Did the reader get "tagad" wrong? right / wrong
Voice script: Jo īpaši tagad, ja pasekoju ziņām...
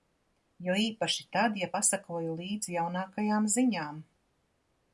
wrong